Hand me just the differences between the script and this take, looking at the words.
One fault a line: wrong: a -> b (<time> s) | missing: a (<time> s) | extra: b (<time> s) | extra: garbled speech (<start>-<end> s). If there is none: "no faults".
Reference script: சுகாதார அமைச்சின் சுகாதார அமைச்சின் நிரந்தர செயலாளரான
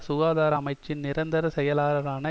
missing: சுகாதார அமைச்சின் (1.0 s)